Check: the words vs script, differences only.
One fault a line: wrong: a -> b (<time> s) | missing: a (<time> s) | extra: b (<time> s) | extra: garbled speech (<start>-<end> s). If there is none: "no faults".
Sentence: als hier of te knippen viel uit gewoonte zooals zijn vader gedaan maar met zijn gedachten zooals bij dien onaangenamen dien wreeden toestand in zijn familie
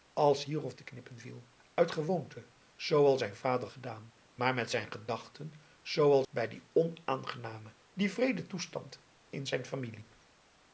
no faults